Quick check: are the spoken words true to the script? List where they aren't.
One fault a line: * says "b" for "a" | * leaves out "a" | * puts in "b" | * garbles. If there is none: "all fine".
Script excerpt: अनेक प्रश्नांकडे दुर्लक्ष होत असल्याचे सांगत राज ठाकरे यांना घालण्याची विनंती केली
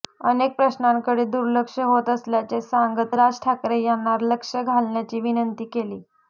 * puts in "लक्ष"